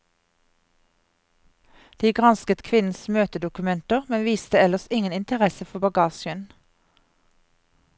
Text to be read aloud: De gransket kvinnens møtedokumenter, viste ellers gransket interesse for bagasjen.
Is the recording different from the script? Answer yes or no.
yes